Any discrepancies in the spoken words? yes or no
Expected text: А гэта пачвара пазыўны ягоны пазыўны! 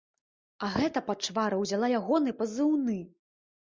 yes